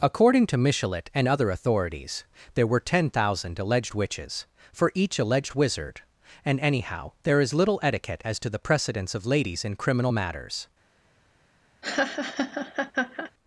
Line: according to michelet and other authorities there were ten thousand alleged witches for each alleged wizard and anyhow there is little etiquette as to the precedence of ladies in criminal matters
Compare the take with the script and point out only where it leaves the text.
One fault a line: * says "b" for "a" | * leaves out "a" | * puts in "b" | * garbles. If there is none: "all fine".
all fine